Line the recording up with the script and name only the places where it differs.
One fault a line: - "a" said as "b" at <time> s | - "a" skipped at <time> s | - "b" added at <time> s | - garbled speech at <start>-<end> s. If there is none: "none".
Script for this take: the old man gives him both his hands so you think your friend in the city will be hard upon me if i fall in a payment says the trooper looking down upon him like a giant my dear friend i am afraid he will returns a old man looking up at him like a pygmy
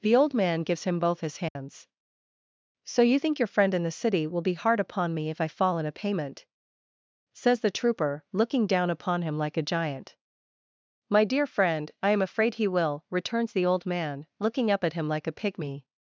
- "a" said as "the" at 13.5 s